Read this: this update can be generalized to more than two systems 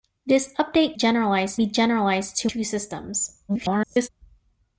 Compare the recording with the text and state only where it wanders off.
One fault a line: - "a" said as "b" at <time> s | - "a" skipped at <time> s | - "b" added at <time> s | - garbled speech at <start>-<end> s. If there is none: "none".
- "can" said as "generalized" at 0.9 s
- "more than" skipped at 2.5 s
- garbled speech at 3.5-4.1 s